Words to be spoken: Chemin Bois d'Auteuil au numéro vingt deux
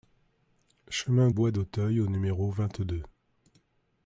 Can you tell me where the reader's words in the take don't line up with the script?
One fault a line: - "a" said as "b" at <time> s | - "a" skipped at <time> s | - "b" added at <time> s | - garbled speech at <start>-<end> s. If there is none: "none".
none